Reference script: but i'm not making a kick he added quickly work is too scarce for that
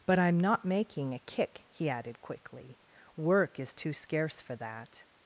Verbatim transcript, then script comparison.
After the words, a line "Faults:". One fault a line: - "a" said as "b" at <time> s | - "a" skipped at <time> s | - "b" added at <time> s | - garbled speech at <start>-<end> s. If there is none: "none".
but i'm not making a kick he added quickly work is too scarce for that
Faults:
none